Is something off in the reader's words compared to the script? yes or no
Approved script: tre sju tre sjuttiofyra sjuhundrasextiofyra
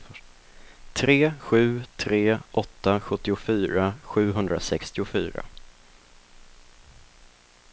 yes